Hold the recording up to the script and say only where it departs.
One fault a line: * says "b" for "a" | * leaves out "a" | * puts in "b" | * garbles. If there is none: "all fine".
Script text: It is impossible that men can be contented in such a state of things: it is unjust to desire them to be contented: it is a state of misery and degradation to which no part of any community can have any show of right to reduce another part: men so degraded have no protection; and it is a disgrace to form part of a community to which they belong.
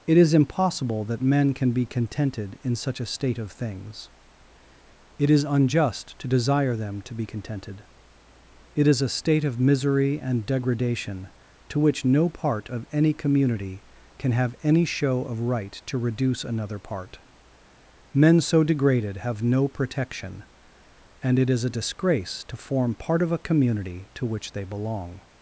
all fine